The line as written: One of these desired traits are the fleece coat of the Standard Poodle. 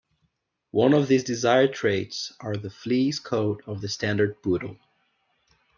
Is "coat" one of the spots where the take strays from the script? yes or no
no